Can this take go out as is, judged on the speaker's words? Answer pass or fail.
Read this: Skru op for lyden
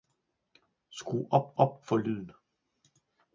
fail